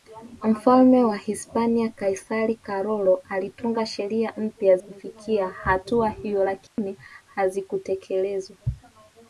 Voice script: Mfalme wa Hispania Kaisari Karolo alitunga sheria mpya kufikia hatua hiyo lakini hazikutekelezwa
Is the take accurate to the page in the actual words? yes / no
yes